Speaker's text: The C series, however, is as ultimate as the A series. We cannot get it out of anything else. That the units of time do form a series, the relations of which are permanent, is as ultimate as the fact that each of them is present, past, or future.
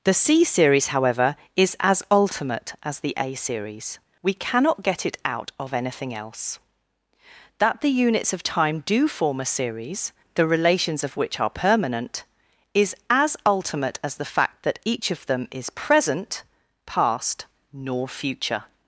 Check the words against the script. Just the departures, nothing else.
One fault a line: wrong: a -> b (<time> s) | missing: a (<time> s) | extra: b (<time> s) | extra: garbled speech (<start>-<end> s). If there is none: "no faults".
wrong: or -> nor (17.7 s)